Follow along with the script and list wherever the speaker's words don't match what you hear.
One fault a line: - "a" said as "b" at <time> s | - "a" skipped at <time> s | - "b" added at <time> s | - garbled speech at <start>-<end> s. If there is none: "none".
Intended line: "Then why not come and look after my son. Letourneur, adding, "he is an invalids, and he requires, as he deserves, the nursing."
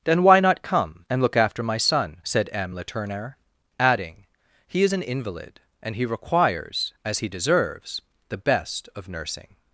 - "said M" added at 2.2 s
- "invalids" said as "invalid" at 5.0 s
- "best of" added at 8.4 s